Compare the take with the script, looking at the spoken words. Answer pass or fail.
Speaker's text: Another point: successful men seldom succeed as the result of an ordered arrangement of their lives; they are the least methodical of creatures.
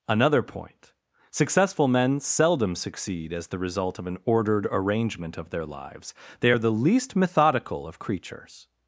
pass